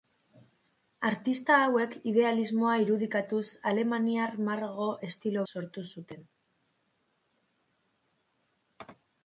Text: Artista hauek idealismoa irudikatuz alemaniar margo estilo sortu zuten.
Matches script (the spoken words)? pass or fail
pass